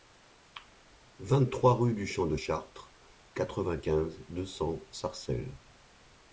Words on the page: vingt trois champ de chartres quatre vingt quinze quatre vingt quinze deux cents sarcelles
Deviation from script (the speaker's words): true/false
true